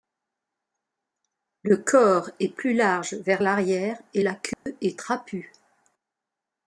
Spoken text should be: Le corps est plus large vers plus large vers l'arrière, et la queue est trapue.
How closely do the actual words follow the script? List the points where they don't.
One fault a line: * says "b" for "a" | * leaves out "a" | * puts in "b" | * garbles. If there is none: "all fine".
* leaves out "plus large vers"